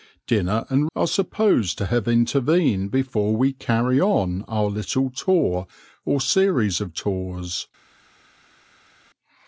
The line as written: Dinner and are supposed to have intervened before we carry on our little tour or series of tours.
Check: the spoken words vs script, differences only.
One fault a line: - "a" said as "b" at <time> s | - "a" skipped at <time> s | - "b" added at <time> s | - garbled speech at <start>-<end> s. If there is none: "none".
none